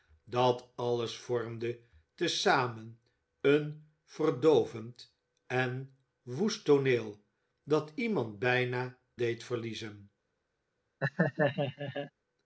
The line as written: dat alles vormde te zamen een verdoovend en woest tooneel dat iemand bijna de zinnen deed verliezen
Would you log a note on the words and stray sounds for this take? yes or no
yes